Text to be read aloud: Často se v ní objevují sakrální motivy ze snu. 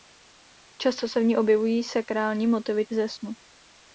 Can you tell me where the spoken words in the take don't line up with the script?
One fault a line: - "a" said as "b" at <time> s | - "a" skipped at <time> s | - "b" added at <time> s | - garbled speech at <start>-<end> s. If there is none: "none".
none